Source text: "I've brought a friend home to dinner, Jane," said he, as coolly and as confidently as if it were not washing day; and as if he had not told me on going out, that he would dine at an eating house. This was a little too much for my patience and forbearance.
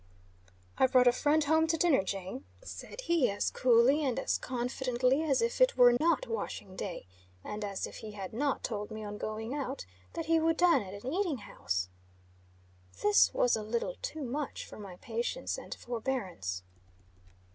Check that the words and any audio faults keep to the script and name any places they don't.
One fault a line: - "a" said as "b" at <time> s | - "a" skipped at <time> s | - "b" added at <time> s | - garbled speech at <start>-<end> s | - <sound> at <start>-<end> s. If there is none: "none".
- dropout at 6.0-6.0 s